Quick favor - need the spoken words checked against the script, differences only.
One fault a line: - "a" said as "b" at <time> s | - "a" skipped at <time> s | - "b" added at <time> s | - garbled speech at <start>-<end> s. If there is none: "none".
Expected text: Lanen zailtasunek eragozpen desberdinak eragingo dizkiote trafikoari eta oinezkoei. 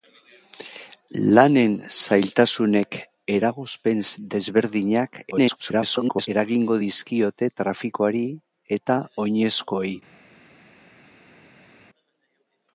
- garbled speech at 5.3-6.3 s